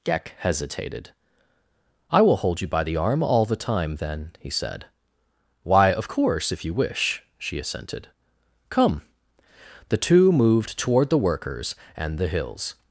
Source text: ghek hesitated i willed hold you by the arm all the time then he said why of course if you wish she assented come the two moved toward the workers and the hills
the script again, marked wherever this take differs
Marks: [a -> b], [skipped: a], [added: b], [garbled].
ghek hesitated i [willed -> will] hold you by the arm all the time then he said why of course if you wish she assented come the two moved toward the workers and the hills